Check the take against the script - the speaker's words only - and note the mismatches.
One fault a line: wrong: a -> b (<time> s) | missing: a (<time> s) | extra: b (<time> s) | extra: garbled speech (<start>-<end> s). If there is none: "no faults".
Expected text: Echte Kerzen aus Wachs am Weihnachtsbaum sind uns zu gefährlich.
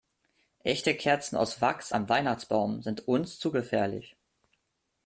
no faults